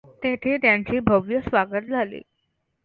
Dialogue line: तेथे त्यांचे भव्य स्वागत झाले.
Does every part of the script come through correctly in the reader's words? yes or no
yes